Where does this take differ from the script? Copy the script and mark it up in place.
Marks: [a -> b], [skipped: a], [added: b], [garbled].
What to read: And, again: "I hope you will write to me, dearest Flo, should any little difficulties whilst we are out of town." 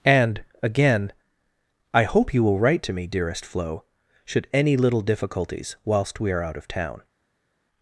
And, again: "I hope you will write to me, dearest Flo, should any little difficulties whilst we are out of town."